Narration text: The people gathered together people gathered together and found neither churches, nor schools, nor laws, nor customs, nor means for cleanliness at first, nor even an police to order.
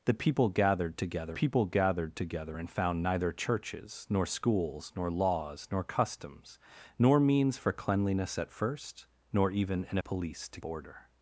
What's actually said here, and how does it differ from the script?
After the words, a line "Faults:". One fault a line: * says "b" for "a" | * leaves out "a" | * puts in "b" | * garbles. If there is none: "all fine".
The people gathered together people gathered together and found neither churches, nor schools, nor laws, nor customs, nor means for cleanliness at first, nor even an police to order.
Faults:
all fine